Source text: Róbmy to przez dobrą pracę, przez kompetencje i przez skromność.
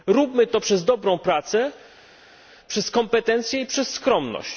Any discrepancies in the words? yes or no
no